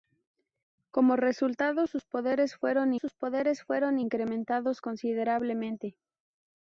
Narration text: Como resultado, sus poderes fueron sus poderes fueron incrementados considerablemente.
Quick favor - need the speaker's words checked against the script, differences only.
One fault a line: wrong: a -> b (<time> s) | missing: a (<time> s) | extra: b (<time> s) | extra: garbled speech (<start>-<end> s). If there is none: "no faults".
no faults